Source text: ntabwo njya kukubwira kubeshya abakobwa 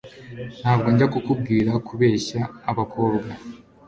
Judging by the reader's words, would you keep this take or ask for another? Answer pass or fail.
pass